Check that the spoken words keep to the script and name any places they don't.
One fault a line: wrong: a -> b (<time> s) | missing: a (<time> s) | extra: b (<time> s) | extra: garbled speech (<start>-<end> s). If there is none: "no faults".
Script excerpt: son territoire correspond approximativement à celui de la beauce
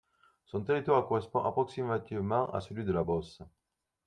no faults